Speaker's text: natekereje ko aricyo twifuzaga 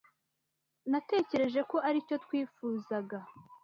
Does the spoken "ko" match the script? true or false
true